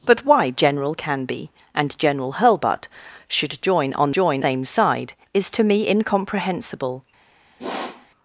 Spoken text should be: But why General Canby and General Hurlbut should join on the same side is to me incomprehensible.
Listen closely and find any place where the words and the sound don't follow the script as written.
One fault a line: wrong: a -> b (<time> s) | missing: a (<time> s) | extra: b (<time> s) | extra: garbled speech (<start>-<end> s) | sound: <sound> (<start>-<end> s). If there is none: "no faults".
wrong: the -> join (4.1 s)
sound: sniff (7.6-8.1 s)